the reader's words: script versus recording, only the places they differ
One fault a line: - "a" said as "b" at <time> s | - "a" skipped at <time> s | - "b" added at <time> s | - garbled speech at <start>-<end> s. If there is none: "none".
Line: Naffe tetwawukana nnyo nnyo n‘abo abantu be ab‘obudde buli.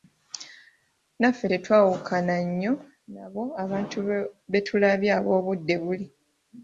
- "nnyo" skipped at 2.7 s
- "tulabye" added at 4.7 s